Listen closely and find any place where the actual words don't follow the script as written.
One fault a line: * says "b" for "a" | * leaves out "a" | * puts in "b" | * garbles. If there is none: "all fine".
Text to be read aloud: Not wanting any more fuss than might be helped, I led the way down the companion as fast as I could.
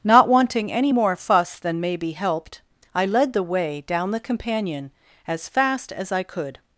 * says "may" for "might"